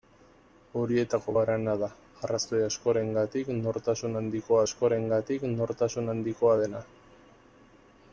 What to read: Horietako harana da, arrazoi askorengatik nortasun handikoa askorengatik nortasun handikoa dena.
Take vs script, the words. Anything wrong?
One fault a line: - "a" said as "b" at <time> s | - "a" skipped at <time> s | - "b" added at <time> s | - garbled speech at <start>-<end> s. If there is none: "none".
none